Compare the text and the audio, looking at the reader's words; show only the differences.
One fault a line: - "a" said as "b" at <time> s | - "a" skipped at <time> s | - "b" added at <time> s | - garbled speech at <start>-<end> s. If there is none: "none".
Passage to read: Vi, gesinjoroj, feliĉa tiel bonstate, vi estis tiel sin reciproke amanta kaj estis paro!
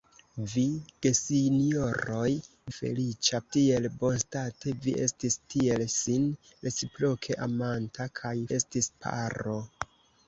none